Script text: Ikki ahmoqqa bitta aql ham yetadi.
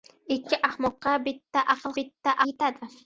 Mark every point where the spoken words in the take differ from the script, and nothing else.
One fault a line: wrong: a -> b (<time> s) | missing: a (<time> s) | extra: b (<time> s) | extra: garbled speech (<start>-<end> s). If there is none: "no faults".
wrong: ham -> bitta (2.0 s)